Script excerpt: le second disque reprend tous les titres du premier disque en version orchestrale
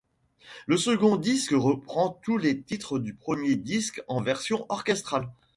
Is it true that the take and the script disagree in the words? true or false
false